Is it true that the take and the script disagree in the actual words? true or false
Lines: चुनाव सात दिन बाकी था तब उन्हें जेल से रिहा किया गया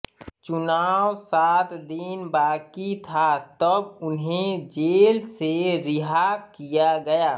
false